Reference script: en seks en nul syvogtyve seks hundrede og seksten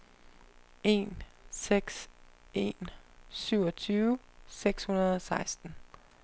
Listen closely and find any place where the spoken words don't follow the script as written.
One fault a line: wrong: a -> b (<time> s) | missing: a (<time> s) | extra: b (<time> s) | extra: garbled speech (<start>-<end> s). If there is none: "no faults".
missing: nul (2.9 s)